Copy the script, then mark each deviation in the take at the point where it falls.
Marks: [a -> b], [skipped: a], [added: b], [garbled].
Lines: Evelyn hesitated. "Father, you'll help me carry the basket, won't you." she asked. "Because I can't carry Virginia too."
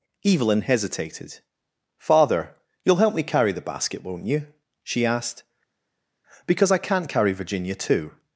Evelyn hesitated. "Father, you'll help me carry the basket, won't you." she asked. "Because I can't carry Virginia too."